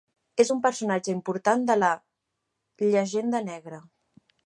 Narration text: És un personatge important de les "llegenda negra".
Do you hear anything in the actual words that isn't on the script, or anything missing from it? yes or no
yes